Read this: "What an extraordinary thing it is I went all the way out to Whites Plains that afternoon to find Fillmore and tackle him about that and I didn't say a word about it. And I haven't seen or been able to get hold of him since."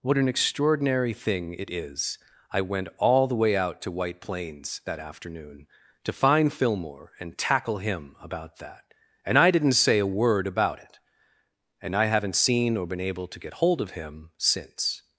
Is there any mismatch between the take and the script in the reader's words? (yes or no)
yes